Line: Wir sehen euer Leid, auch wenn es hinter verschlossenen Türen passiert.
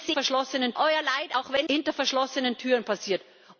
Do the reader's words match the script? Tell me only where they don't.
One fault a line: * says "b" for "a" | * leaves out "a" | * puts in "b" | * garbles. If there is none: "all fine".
* says "verschlossenen" for "sehen"
* leaves out "es"